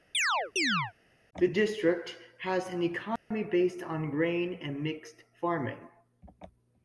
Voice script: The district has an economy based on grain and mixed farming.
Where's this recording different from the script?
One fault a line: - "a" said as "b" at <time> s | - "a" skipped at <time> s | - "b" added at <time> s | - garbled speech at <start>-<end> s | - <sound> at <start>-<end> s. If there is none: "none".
- chirp at 0.1-0.9 s
- dropout at 3.2-3.3 s